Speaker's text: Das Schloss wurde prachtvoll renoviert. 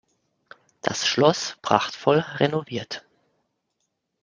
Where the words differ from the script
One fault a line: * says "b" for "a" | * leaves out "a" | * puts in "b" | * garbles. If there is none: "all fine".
* leaves out "wurde"